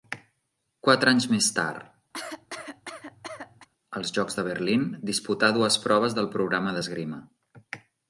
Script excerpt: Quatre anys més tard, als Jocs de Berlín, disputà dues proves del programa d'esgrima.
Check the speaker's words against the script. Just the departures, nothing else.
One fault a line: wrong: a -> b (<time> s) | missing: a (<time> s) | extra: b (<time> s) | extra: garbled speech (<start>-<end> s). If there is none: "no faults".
no faults